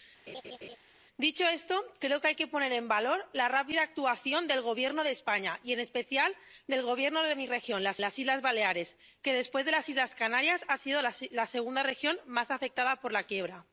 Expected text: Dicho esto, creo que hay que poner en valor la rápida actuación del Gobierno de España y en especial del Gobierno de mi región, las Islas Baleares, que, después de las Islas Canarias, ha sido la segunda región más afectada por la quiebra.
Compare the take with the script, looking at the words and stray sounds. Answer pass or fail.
fail